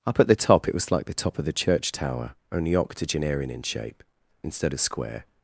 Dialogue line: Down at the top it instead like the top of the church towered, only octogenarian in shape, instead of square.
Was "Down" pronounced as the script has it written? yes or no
no